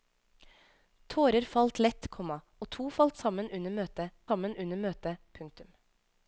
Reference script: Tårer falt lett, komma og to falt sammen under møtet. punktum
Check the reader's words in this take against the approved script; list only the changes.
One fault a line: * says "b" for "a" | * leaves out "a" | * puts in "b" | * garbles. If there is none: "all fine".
* puts in "sammen under møtet"